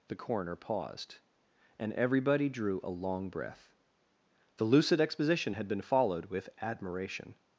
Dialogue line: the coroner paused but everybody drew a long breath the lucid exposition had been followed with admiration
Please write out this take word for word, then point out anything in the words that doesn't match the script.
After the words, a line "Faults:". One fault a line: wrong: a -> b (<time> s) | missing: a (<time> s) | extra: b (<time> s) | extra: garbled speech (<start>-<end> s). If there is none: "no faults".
the coroner paused and everybody drew a long breath the lucid exposition had been followed with admiration
Faults:
wrong: but -> and (1.8 s)